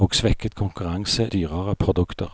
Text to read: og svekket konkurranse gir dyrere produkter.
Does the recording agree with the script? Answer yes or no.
no